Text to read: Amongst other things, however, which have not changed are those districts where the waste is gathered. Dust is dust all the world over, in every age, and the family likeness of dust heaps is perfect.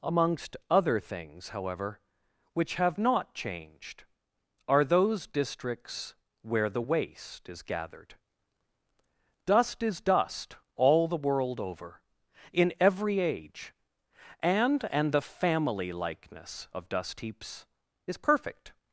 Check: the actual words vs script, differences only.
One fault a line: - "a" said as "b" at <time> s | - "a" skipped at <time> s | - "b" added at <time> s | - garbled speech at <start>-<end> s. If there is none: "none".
- "and" added at 14.9 s